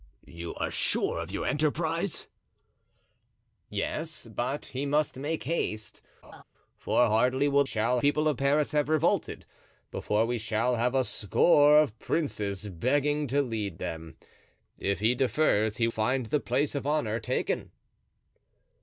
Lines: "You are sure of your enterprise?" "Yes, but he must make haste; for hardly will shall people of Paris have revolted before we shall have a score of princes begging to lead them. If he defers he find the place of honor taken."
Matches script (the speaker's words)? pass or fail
pass